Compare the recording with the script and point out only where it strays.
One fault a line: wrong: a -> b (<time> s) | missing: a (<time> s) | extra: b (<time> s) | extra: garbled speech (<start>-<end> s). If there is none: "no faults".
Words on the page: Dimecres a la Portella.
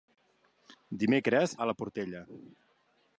no faults